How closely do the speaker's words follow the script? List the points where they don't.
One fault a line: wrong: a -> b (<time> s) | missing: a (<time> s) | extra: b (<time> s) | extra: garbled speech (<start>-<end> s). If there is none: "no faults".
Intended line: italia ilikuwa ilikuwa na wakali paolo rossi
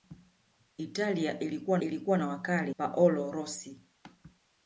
no faults